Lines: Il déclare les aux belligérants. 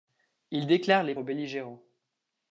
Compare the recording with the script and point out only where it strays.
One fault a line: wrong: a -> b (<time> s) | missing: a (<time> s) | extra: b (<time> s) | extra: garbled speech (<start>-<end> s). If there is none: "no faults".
no faults